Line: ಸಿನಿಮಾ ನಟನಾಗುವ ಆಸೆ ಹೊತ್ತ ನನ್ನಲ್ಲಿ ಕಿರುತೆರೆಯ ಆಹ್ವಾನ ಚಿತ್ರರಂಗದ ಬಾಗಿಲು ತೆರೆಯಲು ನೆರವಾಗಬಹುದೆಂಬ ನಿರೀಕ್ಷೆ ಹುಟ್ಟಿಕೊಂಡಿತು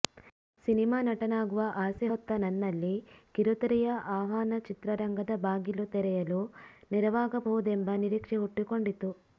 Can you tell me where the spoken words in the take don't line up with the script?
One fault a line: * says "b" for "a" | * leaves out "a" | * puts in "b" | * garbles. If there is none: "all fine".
all fine